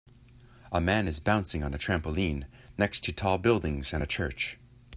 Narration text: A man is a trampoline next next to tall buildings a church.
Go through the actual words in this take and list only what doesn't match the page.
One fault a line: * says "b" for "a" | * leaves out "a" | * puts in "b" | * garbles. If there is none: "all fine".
* puts in "bouncing on"
* leaves out "next"
* puts in "and"